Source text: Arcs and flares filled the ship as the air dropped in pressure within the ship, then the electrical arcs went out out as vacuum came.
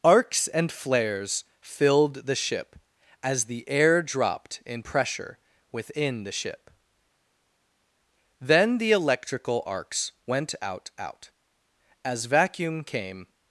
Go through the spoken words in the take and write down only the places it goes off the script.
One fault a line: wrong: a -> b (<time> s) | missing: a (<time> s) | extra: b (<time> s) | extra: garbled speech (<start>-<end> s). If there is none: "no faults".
no faults